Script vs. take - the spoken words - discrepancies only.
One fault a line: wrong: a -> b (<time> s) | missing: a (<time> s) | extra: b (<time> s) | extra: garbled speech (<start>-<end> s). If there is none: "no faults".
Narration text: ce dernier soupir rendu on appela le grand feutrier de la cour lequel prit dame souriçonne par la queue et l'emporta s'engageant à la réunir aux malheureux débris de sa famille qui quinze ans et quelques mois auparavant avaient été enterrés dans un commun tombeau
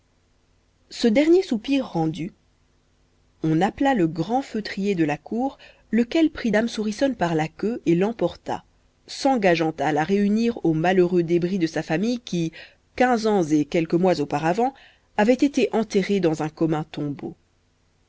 no faults